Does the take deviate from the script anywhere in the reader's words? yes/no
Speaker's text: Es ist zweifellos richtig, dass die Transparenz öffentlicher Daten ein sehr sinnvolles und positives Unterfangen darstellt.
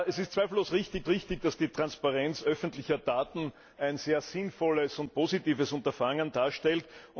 yes